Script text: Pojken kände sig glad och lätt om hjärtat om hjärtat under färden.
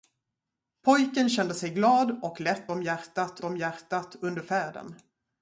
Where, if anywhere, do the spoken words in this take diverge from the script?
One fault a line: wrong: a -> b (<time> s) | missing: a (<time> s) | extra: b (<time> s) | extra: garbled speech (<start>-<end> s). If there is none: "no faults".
no faults